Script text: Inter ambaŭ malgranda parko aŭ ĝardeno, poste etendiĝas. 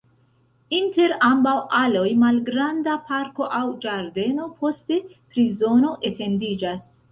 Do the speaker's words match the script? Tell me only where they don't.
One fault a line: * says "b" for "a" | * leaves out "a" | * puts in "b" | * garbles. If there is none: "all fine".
* puts in "aloj"
* puts in "prizono"